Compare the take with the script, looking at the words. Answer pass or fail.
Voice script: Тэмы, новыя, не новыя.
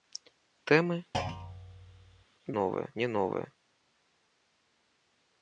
pass